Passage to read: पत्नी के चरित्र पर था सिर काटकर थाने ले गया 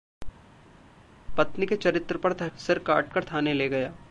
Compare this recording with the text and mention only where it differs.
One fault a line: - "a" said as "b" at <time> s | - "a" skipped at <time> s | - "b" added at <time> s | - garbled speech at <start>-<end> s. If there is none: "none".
none